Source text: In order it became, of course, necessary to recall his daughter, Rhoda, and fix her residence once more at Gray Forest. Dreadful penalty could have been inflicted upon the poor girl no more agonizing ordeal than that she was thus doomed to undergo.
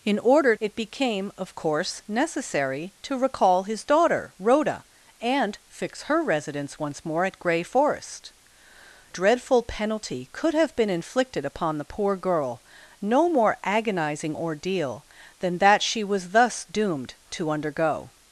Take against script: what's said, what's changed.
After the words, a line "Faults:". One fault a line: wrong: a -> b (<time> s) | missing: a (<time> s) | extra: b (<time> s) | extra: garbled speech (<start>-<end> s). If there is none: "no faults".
In order it became, of course, necessary to recall his daughter, Rhoda, and fix her residence once more at Gray Forest. Dreadful penalty could have been inflicted upon the poor girl no more agonizing ordeal than that she was thus doomed to undergo.
Faults:
no faults